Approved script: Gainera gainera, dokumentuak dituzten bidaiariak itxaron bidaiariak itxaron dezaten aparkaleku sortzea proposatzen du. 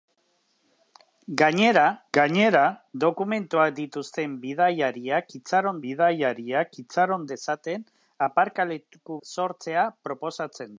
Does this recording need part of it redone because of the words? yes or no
no